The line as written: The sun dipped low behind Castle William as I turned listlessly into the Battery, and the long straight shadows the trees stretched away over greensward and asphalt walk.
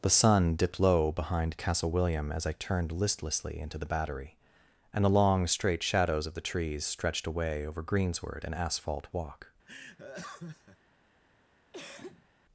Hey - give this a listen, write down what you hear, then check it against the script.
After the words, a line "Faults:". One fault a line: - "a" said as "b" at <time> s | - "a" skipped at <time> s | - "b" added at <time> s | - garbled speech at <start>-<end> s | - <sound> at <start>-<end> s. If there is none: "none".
The sun dipped low behind Castle William as I turned listlessly into the Battery, and the long straight shadows of the trees stretched away over greensward and asphalt walk.
Faults:
- "of" added at 6.2 s
- laugh at 9.6-10.8 s
- cough at 11.7-12.3 s